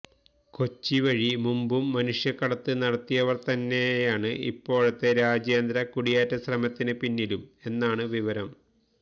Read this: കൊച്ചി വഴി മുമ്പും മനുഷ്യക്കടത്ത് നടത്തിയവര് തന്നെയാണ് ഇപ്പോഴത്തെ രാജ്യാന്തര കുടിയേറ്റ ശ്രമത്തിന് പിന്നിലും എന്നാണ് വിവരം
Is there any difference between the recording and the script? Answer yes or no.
no